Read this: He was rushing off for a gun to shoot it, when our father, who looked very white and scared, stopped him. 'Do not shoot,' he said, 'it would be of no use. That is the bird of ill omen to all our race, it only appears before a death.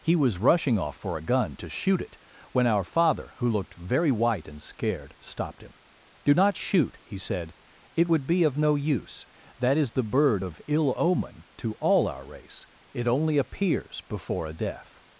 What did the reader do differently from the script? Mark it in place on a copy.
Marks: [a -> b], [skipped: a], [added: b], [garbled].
He was rushing off for a gun to shoot it, when our father, who looked very white and scared, stopped him. 'Do not shoot,' he said, 'it would be of no use. That is the bird of ill omen to all our race, it only appears before a death.